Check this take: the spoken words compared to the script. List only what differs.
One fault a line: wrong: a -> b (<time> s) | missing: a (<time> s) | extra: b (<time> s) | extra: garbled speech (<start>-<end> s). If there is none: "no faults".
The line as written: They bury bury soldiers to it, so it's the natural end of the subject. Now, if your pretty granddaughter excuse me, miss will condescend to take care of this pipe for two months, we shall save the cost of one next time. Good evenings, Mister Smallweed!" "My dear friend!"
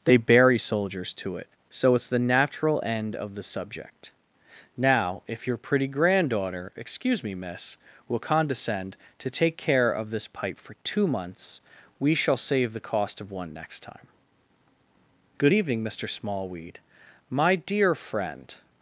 missing: bury (0.6 s)
wrong: evenings -> evening (15.5 s)